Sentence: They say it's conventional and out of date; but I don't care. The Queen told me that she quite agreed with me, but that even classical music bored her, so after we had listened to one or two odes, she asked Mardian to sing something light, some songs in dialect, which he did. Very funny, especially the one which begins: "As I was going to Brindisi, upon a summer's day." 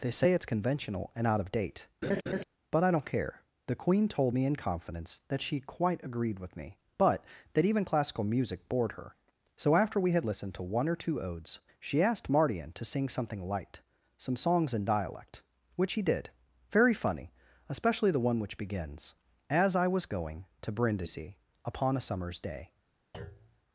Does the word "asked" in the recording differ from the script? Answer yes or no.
no